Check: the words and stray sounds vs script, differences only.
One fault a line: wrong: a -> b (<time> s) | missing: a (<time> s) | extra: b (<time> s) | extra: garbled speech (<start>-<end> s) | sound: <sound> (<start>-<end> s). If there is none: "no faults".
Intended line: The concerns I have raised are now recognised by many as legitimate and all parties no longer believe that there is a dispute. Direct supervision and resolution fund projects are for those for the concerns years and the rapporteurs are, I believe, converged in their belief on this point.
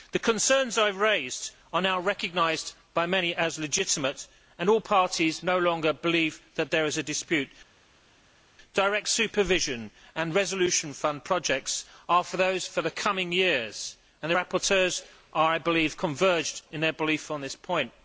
wrong: concerns -> coming (12.9 s)